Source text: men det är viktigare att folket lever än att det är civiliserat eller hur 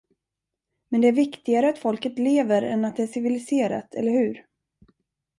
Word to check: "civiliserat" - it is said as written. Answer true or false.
true